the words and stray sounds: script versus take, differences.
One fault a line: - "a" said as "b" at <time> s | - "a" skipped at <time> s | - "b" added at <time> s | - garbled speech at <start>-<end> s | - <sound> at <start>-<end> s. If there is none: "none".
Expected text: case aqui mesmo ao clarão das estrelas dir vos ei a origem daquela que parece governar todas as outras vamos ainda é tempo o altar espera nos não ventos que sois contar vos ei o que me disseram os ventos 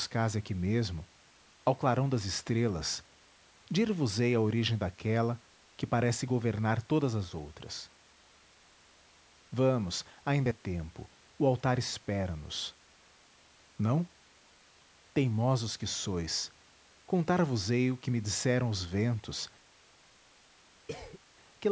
- "ventos" said as "teimosos" at 15.1 s
- cough at 20.9-21.2 s